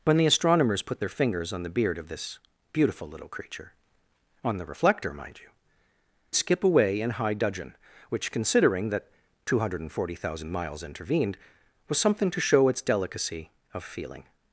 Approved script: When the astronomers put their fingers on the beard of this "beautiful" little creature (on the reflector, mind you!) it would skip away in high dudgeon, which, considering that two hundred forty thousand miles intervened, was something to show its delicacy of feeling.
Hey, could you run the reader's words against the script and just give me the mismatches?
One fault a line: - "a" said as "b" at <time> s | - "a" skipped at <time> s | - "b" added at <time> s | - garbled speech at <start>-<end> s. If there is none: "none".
- "it would" skipped at 5.5 s